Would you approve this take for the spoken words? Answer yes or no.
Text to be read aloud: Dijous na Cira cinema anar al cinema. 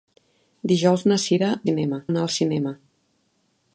yes